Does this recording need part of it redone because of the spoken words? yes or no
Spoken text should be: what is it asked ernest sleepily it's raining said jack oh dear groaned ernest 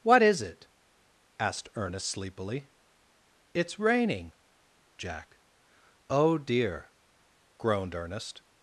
yes